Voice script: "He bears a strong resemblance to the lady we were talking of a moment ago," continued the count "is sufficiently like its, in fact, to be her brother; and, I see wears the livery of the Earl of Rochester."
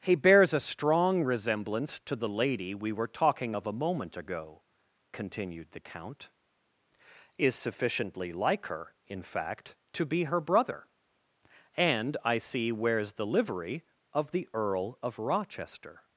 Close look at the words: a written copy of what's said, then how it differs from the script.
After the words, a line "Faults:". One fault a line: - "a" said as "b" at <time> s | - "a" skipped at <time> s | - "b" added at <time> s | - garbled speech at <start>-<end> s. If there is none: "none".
"He bears a strong resemblance to the lady we were talking of a moment ago," continued the count "is sufficiently like her, in fact, to be her brother; and, I see wears the livery of the Earl of Rochester."
Faults:
- "its" said as "her" at 8.7 s